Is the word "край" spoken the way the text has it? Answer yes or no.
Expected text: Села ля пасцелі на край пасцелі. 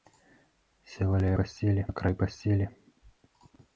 yes